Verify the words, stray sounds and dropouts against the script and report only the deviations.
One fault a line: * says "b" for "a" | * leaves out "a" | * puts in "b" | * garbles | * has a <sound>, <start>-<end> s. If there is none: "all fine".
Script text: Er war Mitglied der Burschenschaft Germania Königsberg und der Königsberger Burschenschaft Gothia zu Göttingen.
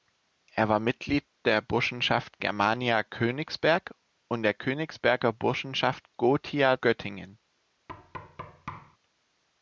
* leaves out "zu"
* has a thud, 7.9-9.0 s